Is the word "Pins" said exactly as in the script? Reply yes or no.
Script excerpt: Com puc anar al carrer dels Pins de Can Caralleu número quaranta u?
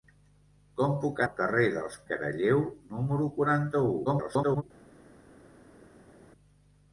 no